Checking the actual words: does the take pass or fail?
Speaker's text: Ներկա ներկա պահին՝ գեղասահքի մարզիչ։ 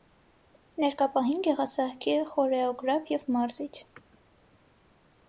fail